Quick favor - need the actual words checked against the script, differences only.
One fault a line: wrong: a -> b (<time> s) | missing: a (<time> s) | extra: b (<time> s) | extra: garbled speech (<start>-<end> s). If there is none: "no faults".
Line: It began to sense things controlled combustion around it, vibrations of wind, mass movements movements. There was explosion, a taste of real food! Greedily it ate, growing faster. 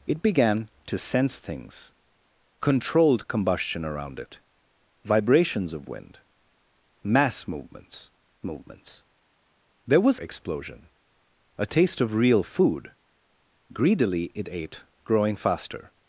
no faults